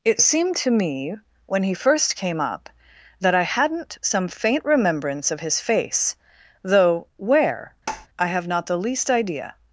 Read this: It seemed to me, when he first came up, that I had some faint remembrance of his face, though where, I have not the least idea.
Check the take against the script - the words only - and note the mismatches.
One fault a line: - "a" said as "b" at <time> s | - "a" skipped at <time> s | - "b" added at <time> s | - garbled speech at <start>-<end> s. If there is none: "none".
- "had" said as "hadn't" at 3.4 s